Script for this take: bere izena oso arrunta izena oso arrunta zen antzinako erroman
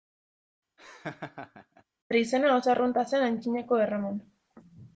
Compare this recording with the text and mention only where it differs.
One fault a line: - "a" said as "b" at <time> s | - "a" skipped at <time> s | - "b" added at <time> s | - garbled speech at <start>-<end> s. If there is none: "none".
- "izena oso arrunta" skipped at 3.1 s